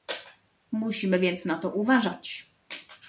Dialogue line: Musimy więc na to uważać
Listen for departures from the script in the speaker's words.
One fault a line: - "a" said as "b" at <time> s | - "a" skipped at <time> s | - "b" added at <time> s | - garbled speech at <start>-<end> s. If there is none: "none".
none